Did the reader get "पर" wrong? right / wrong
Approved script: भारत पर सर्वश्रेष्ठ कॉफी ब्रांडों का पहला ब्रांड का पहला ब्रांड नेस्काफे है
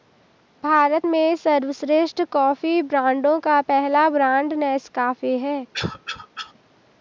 wrong